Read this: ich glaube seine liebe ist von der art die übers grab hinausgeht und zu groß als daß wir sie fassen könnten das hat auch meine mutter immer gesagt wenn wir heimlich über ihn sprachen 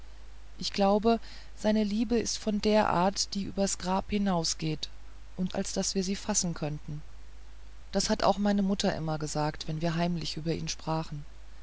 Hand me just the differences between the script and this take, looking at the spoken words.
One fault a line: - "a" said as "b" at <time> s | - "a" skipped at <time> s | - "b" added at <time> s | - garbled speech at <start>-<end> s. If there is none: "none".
- "zu groß" skipped at 5.5 s